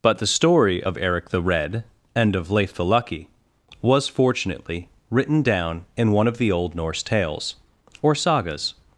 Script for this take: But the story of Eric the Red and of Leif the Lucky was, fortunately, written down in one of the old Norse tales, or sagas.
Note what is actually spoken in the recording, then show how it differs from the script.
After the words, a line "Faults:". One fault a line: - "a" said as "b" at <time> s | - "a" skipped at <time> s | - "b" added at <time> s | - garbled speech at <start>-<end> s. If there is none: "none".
But the story of Eric the Red and of Leif the Lucky was, fortunately, written down in one of the old Norse tales, or sagas.
Faults:
none